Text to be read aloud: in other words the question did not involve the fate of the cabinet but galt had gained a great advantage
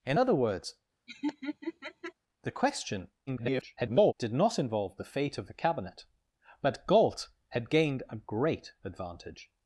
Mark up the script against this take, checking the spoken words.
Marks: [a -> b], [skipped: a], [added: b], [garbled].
in other words the question [garbled] did not involve the fate of the cabinet but galt had gained a great advantage